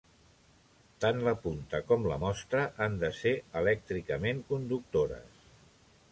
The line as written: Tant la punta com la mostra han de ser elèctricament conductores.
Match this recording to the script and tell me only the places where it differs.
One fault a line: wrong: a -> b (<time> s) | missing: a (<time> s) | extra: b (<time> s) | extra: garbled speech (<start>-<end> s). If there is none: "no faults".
no faults